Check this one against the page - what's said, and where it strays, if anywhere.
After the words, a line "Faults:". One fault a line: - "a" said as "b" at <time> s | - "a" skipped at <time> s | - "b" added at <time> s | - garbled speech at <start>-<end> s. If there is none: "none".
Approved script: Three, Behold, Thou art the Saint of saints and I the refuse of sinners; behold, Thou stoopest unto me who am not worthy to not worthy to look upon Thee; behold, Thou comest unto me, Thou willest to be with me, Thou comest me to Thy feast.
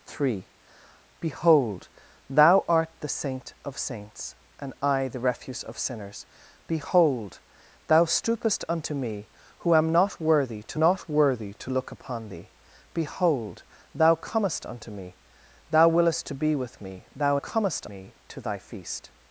Three, Behold, Thou art the Saint of saints and I the refuse of sinners; behold, Thou stoopest unto me who am not worthy to not worthy to look upon Thee; behold, Thou comest unto me, Thou willest to be with me, Thou comest me to Thy feast.
Faults:
none